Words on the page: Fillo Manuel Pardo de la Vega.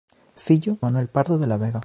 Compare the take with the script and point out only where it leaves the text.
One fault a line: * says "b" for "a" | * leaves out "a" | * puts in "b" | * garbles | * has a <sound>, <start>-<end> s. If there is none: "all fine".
all fine